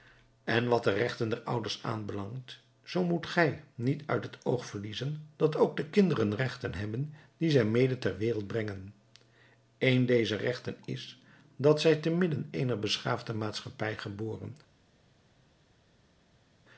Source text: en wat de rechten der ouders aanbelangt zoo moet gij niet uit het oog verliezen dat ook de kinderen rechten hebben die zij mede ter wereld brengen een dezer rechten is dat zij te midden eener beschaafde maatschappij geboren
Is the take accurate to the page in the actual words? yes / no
yes